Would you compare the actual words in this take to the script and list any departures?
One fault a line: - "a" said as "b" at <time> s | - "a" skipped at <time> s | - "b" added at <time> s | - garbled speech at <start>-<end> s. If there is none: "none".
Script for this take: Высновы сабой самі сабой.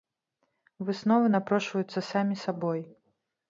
- "сабой" said as "напрошваюцца" at 1.4 s